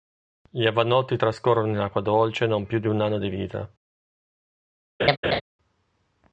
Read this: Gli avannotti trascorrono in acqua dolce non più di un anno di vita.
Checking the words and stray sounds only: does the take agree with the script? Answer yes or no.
no